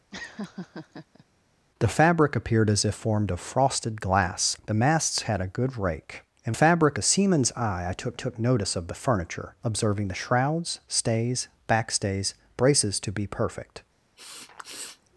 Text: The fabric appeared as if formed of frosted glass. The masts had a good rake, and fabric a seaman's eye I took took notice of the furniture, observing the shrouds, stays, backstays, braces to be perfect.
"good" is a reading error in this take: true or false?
false